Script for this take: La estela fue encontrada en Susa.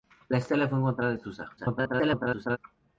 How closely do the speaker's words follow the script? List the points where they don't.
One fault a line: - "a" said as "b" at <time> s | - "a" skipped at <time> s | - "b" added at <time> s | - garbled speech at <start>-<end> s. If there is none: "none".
- garbled speech at 1.6-2.6 s